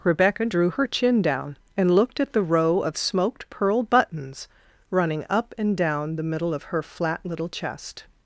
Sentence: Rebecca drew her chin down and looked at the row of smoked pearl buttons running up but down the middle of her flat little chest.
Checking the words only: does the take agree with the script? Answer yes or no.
no